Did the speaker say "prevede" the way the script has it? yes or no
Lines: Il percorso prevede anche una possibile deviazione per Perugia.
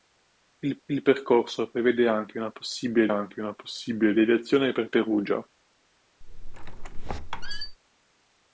yes